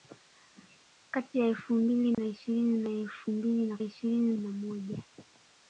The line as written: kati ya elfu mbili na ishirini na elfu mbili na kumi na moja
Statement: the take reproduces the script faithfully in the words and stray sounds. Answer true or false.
false